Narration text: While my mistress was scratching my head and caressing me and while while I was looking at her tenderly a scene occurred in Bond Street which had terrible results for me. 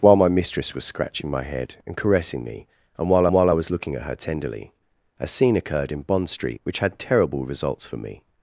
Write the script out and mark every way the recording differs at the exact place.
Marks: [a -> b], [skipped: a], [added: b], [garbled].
While my mistress was scratching my head and caressing me and while while I was looking at her tenderly a scene occurred in Bond Street which had terrible results for me.